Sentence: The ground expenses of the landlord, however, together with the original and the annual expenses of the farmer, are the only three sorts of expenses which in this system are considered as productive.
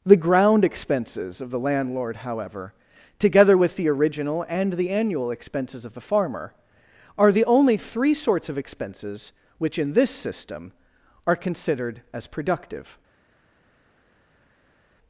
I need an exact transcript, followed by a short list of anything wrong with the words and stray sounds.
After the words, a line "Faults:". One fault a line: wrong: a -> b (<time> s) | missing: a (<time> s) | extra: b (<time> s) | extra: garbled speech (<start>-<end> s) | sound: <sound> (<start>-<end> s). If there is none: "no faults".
The ground expenses of the landlord, however, together with the original and the annual expenses of the farmer, are the only three sorts of expenses which in this system are considered as productive.
Faults:
no faults